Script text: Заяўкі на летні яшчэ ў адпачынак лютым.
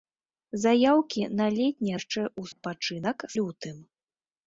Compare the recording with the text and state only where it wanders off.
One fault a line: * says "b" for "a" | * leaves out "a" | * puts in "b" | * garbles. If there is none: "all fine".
all fine